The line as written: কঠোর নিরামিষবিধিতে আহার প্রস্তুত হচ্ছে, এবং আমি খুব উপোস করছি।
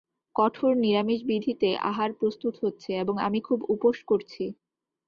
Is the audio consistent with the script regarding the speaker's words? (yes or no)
yes